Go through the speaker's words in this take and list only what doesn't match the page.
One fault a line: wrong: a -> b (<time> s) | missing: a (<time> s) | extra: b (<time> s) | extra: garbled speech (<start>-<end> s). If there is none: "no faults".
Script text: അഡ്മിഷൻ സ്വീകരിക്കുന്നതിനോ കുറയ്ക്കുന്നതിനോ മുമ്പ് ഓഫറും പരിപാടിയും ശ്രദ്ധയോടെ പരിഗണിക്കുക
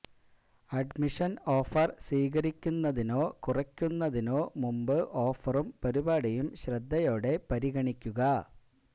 extra: ഓഫർ (1.6 s)